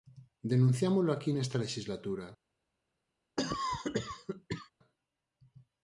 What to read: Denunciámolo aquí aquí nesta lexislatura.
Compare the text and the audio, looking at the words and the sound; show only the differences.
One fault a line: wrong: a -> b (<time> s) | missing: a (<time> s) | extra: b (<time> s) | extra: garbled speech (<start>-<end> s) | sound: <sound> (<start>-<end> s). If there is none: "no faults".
missing: aquí (1.3 s)
sound: cough (3.4-4.7 s)